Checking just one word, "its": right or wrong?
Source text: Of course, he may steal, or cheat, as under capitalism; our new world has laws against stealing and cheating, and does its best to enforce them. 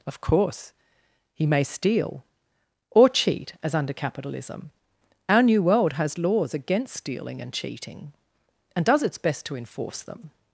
right